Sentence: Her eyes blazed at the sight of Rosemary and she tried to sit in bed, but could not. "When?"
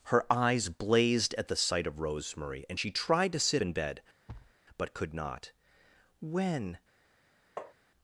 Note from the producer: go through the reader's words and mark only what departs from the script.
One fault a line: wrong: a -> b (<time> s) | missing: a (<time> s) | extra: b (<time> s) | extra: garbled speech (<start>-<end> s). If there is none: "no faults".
no faults